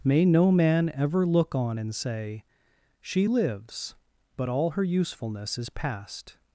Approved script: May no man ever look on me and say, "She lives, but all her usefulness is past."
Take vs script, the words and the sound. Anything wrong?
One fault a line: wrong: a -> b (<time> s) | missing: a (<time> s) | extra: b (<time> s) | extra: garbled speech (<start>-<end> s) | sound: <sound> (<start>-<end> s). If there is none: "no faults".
missing: me (1.8 s)